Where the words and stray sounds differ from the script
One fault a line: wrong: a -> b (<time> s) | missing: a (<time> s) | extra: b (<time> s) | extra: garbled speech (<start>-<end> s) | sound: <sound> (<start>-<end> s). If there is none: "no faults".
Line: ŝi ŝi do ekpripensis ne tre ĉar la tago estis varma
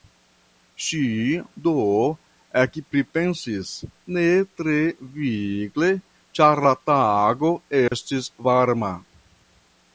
missing: ŝi (1.0 s)
extra: vigle (5.2 s)
sound: dropout (7.9-7.9 s)